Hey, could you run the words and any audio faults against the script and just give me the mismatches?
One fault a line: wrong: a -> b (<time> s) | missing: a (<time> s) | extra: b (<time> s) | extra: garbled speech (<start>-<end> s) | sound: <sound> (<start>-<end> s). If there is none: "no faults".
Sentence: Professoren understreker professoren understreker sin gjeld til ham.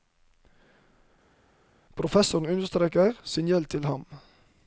missing: professoren understreker (3.2 s)